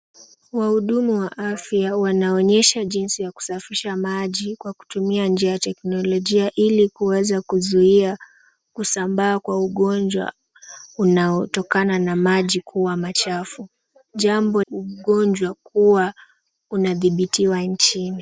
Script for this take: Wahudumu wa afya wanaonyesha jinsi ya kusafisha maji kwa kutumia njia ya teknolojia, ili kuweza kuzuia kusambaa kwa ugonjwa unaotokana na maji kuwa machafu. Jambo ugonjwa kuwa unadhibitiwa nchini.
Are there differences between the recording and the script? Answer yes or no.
no